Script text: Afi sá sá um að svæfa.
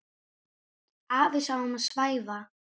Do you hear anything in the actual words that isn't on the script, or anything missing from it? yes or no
yes